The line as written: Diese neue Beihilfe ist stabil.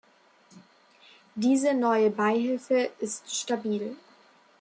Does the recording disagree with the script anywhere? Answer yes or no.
no